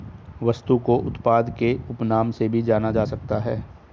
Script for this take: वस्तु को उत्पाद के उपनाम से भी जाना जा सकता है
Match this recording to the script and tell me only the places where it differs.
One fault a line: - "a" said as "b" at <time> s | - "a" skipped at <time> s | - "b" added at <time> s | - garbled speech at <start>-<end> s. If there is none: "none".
none